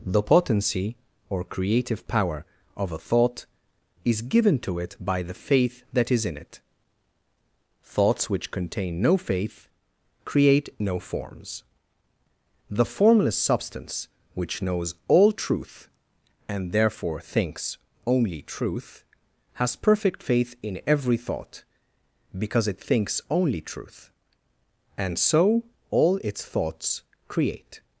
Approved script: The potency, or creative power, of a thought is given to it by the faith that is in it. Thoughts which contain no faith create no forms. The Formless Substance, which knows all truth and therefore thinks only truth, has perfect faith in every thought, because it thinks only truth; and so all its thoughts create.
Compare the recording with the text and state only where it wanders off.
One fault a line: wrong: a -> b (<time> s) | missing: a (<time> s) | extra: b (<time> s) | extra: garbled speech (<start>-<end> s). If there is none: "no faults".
no faults